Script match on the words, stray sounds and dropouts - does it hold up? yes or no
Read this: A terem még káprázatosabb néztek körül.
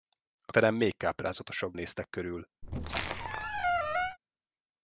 no